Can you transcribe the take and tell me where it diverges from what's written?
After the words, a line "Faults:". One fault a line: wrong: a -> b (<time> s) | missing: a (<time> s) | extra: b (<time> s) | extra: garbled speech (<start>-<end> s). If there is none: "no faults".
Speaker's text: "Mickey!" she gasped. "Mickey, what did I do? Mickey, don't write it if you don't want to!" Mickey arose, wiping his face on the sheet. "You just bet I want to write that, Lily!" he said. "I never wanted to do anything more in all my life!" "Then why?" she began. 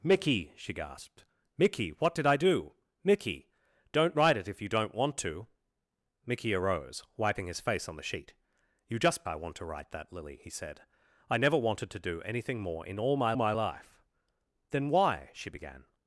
"Mickey!" she gasped. "Mickey, what did I do? Mickey, don't write it if you don't want to!" Mickey arose, wiping his face on the sheet. "You just I want to write that, Lily!" he said. "I never wanted to do anything more in all my my life!" "Then why?" she began.
Faults:
missing: bet (9.2 s)
extra: my (13.4 s)